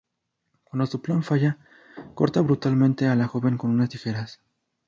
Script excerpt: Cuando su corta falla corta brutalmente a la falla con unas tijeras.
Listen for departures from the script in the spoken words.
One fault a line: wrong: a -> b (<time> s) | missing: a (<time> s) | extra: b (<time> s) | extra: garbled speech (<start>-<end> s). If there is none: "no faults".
wrong: corta -> plan (1.0 s)
wrong: falla -> joven (3.2 s)